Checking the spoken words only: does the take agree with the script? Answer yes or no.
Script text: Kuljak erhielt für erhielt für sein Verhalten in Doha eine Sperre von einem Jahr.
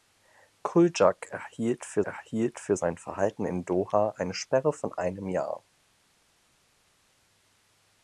yes